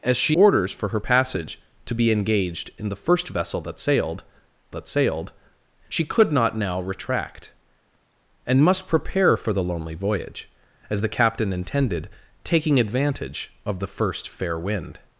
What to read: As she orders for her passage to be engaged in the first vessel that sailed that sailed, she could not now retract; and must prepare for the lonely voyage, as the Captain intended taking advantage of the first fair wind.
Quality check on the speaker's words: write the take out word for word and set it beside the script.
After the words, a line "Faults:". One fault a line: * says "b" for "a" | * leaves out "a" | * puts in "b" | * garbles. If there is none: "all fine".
As she orders for her passage to be engaged in the first vessel that sailed that sailed, she could not now retract; and must prepare for the lonely voyage, as the Captain intended taking advantage of the first fair wind.
Faults:
all fine